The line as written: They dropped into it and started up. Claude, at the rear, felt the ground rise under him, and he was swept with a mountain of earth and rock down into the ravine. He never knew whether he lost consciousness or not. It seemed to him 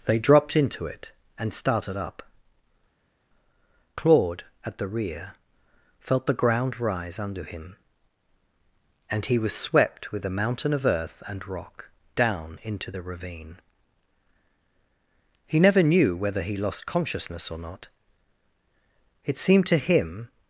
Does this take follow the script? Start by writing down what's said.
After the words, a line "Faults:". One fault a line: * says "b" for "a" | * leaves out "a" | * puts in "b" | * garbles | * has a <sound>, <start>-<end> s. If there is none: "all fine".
They dropped into it and started up. Claude, at the rear, felt the ground rise under him, and he was swept with a mountain of earth and rock down into the ravine. He never knew whether he lost consciousness or not. It seemed to him
Faults:
all fine